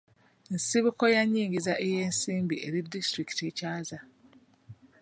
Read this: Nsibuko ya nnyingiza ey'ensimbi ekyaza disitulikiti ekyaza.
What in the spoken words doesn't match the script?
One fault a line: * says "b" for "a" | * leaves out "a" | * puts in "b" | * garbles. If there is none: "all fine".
* says "eri" for "ekyaza"